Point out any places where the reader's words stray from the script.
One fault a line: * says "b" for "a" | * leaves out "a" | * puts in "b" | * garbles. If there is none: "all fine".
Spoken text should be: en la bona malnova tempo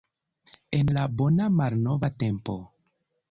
all fine